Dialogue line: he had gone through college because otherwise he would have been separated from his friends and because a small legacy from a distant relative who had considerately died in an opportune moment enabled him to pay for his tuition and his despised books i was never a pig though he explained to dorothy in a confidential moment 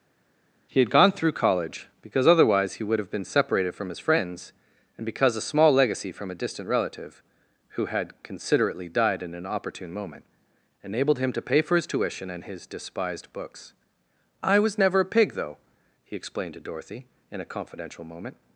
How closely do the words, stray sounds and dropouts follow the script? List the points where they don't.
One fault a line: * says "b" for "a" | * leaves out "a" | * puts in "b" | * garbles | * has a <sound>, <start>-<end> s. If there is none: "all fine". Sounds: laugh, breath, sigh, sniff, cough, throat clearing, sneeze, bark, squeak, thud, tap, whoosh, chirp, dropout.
all fine